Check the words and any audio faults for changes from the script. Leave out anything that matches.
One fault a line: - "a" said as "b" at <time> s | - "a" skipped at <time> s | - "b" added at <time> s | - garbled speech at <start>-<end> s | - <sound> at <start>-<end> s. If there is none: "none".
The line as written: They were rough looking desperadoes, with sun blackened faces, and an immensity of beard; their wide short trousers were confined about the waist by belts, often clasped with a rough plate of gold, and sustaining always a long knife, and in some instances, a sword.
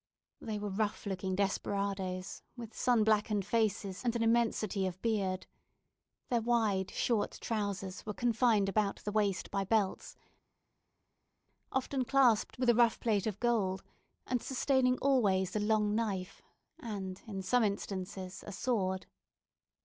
none